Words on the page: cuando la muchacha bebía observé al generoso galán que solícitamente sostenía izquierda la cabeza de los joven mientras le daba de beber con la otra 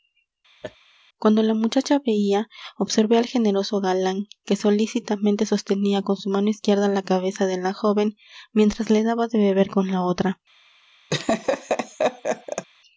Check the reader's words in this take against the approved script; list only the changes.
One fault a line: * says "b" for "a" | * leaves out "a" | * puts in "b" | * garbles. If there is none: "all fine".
* puts in "con su mano"
* says "la" for "los"